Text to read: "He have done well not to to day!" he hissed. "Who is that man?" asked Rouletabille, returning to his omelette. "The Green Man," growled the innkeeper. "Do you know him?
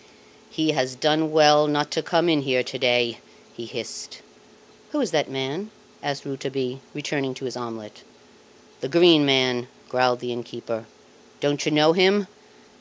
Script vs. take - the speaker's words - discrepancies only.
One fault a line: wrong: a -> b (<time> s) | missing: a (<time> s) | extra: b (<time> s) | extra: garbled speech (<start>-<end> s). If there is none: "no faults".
wrong: have -> has (0.7 s)
extra: come in here (2.0 s)
wrong: Do -> Don't (11.4 s)